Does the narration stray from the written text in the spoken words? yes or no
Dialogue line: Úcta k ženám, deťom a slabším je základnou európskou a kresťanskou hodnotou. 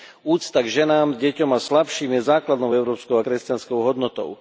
no